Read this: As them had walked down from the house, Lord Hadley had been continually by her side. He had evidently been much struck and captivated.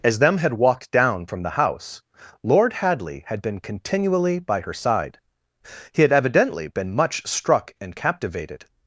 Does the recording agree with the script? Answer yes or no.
yes